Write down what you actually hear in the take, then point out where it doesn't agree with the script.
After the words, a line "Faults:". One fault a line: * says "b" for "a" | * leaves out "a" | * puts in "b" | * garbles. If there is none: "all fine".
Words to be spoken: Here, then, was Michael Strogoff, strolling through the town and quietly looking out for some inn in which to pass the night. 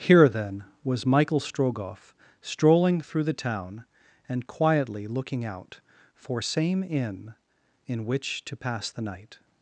Here, then, was Michael Strogoff, strolling through the town and quietly looking out for same inn in which to pass the night.
Faults:
* says "same" for "some"